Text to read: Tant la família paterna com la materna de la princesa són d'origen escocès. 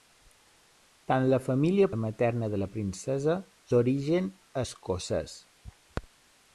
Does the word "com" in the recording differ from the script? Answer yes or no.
yes